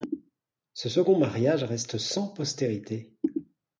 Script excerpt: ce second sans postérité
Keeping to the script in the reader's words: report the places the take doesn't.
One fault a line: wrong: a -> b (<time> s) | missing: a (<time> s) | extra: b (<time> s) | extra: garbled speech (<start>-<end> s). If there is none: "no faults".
extra: mariage reste (1.1 s)